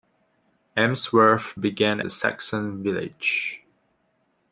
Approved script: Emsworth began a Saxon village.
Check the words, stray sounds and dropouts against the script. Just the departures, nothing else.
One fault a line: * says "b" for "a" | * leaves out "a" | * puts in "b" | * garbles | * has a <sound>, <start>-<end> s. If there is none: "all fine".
all fine